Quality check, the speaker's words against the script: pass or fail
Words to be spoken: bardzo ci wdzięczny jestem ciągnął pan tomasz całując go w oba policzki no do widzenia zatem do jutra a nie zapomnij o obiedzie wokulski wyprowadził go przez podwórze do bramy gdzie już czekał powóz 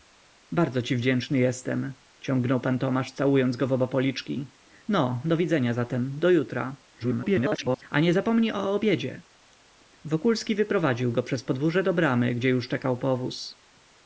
fail